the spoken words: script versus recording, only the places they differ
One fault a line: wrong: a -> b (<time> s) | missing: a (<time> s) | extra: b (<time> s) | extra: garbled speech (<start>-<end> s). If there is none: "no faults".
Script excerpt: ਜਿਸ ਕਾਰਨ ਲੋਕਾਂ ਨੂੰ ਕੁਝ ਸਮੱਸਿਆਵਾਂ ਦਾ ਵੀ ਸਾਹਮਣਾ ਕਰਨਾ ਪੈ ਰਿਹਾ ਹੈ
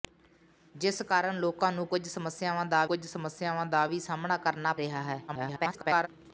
extra: ਕੁਝ ਸਮੱਸਿਆਵਾਂ ਦਾ (2.8 s)
missing: ਪੈ (4.7 s)
extra: garbled speech (5.3-6.1 s)